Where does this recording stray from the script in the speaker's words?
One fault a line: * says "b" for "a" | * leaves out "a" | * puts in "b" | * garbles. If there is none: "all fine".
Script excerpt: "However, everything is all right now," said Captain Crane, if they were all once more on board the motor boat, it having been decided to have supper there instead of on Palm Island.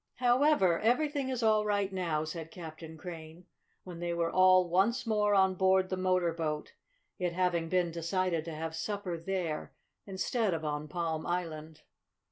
* says "when" for "if"